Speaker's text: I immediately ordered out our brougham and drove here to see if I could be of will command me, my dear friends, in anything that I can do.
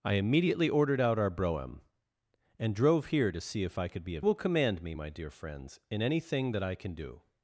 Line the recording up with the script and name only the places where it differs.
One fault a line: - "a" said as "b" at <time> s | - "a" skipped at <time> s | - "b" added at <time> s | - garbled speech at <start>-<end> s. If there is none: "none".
none